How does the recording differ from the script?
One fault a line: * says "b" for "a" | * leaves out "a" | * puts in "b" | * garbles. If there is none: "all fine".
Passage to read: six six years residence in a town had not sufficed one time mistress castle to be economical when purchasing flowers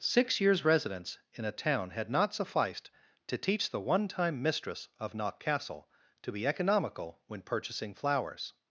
* leaves out "six"
* puts in "to teach the"
* puts in "of knock"